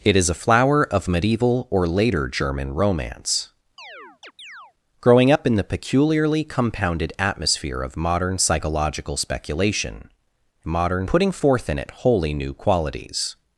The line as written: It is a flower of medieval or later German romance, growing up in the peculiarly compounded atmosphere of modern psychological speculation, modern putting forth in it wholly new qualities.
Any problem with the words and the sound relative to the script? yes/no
yes